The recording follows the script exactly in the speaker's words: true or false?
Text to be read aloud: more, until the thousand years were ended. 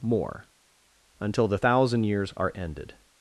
false